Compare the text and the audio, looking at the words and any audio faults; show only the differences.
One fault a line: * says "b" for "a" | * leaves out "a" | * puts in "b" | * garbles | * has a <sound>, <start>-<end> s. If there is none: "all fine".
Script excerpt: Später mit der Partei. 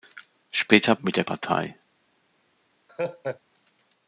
* has a laugh, 2.9-3.4 s